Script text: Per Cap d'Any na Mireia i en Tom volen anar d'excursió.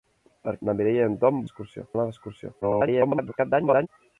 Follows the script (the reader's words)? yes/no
no